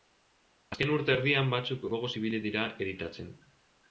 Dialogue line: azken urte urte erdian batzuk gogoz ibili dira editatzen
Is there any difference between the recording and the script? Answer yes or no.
yes